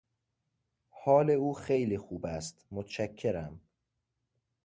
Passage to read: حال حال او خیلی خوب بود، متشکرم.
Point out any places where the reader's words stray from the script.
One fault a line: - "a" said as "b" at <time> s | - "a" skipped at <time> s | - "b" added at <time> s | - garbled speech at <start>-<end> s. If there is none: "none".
- "حال" skipped at 1.3 s
- "بود" said as "است" at 2.2 s